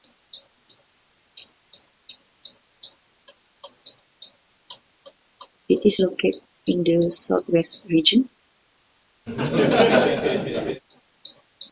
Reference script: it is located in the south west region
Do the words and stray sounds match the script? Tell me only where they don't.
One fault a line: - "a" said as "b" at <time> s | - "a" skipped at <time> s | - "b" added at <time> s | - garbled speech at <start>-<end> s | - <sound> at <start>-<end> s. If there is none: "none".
- laugh at 9.3-10.8 s